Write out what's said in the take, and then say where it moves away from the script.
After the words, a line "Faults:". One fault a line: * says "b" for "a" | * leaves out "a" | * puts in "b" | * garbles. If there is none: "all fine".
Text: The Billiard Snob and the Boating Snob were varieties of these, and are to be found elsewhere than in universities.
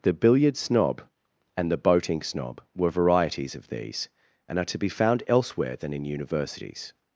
The Billiard Snob and the Boating Snob were varieties of these, and are to be found elsewhere than in universities.
Faults:
all fine